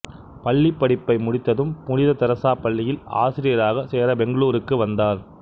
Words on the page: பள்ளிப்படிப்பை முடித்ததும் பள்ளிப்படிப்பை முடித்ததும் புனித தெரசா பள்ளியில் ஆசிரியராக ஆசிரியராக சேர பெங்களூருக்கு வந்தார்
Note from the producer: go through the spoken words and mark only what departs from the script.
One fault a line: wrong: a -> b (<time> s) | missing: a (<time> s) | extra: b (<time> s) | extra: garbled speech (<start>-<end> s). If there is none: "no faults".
missing: பள்ளிப்படிப்பை முடித்ததும் (1.8 s)
missing: ஆசிரியராக (3.9 s)